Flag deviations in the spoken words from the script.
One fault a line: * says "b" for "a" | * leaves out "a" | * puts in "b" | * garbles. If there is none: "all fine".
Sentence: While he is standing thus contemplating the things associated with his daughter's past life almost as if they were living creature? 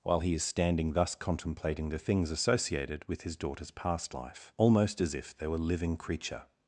all fine